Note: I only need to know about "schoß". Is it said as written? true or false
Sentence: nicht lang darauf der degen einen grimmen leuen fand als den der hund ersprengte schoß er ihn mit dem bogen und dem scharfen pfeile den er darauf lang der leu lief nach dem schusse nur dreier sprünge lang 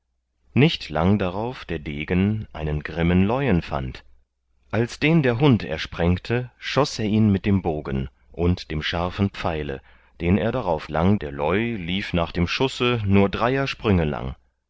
true